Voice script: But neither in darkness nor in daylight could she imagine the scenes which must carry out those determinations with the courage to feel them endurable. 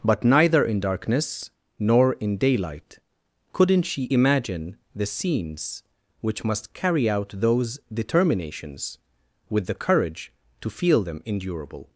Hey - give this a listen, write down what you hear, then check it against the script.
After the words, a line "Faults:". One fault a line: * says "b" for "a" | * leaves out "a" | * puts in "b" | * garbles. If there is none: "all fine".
But neither in darkness nor in daylight couldn't she imagine the scenes which must carry out those determinations with the courage to feel them endurable.
Faults:
* says "couldn't" for "could"